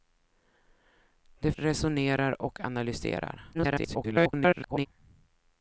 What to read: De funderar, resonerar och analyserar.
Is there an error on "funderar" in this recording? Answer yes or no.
yes